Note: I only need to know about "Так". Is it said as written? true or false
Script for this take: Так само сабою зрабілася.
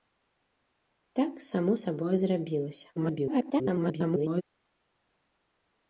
true